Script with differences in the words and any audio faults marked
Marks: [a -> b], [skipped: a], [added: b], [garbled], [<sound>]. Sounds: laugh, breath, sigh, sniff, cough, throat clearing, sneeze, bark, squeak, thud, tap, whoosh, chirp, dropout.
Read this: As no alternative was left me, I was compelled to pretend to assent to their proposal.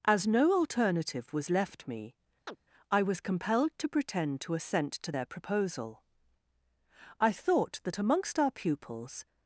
As no alternative was left me, [chirp] I was compelled to pretend to assent to their proposal. [added: I thought that amongst our pupils]